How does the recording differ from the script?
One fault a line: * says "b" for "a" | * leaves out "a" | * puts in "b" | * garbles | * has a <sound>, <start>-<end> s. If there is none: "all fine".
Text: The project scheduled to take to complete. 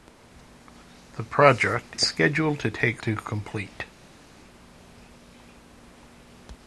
all fine